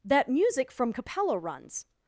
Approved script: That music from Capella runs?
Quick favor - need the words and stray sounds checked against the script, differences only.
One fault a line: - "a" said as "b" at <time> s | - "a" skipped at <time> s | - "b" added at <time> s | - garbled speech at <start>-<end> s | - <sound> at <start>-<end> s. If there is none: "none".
none